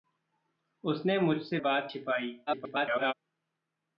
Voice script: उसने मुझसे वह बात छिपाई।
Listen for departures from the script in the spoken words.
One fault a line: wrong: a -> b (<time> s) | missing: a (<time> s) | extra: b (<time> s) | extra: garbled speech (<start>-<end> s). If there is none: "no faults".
missing: वह (1.6 s)
extra: garbled speech (2.5-3.1 s)